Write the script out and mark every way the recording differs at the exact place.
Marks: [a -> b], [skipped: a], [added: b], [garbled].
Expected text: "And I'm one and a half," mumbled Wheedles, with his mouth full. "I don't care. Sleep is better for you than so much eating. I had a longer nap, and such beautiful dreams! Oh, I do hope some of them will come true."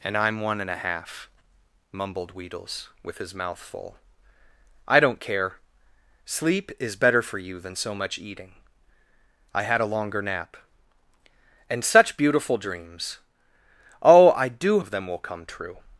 "And I'm one and a half," mumbled Wheedles, with his mouth full. "I don't care. Sleep is better for you than so much eating. I had a longer nap, and such beautiful dreams! Oh, I do [skipped: hope some] of them will come true."